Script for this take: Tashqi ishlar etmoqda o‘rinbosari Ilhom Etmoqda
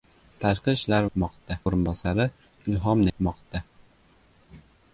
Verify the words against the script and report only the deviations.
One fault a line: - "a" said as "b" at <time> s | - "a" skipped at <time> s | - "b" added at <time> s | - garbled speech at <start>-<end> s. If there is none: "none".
none